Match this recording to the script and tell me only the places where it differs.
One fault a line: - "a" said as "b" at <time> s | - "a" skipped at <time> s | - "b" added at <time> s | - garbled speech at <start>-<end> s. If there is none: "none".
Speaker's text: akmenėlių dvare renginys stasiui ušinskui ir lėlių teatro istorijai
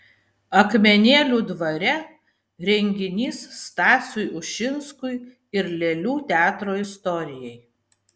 none